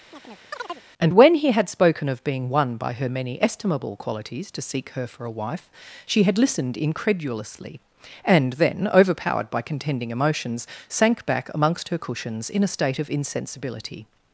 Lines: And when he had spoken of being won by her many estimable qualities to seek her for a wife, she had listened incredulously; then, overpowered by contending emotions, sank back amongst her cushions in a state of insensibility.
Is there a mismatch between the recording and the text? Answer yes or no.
yes